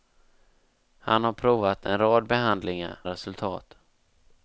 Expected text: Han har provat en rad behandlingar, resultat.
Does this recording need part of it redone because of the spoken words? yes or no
no